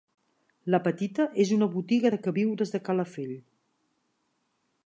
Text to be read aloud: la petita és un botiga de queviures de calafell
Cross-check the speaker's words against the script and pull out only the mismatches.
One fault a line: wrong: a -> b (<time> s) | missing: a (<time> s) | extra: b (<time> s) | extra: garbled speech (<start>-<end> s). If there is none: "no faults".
wrong: un -> una (1.6 s)